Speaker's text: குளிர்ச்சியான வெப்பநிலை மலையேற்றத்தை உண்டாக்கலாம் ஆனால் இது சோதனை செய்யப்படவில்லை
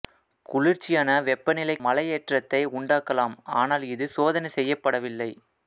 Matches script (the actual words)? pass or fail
pass